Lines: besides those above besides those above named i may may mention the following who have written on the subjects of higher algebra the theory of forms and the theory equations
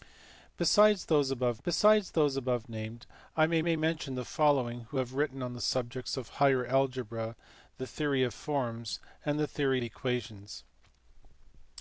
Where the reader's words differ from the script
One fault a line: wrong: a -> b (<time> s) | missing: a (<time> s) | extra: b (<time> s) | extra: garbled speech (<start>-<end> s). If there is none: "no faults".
no faults